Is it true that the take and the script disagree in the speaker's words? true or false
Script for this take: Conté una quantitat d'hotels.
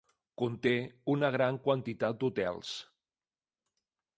true